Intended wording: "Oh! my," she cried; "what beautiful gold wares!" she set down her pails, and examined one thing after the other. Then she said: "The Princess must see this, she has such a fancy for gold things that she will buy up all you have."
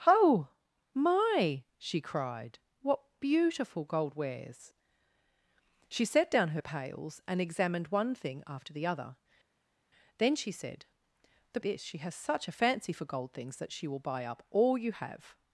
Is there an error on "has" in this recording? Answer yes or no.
no